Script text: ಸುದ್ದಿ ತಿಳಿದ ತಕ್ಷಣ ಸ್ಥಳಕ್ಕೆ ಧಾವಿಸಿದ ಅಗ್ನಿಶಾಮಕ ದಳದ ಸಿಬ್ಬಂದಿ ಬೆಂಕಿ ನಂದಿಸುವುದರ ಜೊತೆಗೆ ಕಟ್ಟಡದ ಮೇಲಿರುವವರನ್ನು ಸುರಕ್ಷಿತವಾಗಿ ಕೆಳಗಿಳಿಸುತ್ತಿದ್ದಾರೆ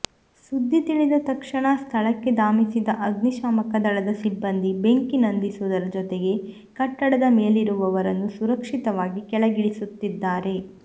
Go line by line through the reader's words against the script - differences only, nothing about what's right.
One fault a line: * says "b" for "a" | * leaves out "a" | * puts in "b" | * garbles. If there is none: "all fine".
all fine